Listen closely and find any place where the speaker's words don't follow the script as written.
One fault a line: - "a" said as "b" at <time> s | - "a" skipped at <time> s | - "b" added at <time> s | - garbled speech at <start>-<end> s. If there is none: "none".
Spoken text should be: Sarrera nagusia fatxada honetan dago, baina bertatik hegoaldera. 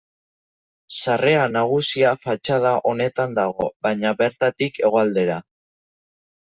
none